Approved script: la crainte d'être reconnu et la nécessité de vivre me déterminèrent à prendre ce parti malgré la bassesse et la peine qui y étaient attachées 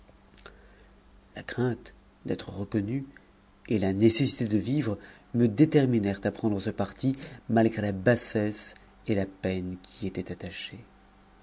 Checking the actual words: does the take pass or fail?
pass